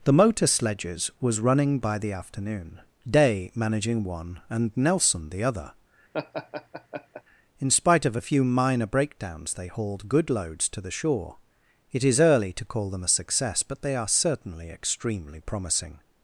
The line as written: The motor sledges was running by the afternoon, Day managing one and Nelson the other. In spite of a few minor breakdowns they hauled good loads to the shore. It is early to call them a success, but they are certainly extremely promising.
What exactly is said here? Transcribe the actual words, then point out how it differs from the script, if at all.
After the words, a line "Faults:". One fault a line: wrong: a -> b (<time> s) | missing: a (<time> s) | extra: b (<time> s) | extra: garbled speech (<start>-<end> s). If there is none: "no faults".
The motor sledges was running by the afternoon, Day managing one and Nelson the other. In spite of a few minor breakdowns they hauled good loads to the shore. It is early to call them a success, but they are certainly extremely promising.
Faults:
no faults